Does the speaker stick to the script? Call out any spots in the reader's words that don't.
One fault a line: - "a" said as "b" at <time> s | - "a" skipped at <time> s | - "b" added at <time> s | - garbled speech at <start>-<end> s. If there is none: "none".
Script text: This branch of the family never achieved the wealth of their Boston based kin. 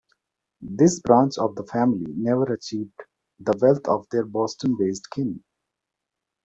none